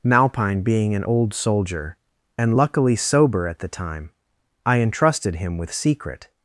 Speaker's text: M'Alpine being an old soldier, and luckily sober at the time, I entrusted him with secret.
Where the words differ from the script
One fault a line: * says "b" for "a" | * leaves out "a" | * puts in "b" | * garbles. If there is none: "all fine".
all fine